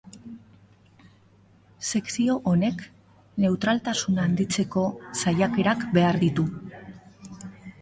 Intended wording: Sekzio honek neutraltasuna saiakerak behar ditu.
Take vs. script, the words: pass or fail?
fail